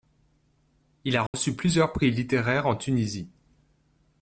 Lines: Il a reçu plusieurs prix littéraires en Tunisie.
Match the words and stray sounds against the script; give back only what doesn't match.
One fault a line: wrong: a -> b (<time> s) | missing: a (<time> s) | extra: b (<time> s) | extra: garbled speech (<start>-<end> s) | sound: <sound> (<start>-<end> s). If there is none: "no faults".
sound: dropout (1.3-1.3 s)